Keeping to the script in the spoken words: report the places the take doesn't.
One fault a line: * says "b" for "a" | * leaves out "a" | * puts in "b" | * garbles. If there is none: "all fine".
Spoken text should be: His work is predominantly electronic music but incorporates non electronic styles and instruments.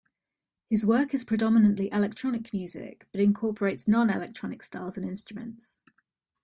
all fine